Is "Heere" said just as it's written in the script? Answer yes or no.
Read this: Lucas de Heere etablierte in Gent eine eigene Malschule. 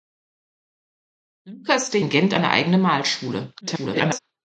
no